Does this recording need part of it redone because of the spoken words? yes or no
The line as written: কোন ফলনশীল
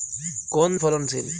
no